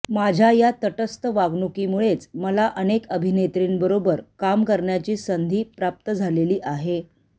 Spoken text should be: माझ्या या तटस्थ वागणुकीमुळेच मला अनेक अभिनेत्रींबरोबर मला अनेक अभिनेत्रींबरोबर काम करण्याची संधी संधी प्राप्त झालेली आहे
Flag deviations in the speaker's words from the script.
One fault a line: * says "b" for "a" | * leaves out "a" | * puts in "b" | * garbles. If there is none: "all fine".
* leaves out "मला अनेक अभिनेत्रींबरोबर"
* leaves out "संधी"